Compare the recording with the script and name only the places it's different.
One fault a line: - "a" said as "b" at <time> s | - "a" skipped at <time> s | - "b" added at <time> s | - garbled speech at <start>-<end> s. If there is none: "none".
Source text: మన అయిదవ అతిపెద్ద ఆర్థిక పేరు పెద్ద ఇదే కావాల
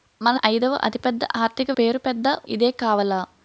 none